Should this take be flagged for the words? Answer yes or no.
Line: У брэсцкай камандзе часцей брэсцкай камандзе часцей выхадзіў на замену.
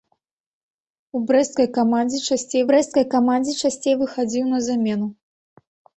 no